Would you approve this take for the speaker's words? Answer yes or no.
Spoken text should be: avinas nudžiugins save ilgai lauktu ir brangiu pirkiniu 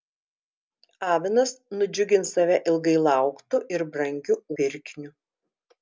yes